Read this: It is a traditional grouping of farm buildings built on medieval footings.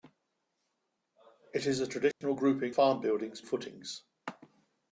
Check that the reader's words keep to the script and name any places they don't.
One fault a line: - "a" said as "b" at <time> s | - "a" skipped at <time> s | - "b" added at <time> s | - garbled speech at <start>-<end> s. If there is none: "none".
- "of" skipped at 2.7 s
- "built on medieval" skipped at 3.4 s